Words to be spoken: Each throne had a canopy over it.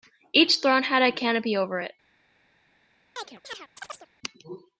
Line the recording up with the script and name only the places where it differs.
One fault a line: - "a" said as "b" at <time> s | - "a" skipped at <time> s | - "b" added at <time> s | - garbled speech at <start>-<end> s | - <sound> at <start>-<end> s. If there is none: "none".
- chirp at 3.2-4.1 s